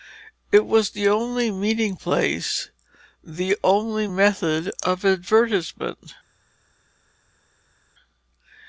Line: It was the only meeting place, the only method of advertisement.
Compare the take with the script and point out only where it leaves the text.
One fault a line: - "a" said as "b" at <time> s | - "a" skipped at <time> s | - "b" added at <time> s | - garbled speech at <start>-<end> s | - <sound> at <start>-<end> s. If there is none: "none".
none